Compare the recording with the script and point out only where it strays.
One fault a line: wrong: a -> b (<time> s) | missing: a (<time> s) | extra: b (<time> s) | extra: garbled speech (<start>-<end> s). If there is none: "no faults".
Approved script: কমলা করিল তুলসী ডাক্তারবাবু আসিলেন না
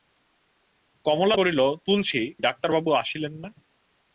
no faults